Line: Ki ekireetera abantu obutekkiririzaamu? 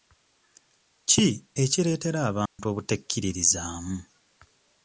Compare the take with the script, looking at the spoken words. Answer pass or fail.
pass